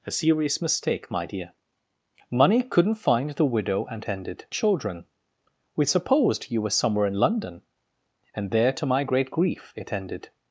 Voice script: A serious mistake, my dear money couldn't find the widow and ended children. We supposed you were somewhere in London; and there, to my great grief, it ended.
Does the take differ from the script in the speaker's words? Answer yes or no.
no